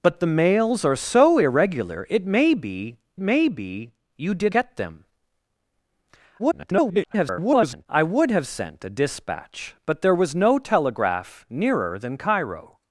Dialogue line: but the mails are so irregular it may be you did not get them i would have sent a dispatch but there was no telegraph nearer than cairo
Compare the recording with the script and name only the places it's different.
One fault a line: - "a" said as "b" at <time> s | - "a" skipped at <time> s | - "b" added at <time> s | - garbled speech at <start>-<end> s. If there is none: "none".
- "may be" added at 3.2 s
- "not" skipped at 4.5 s
- garbled speech at 6.4-7.9 s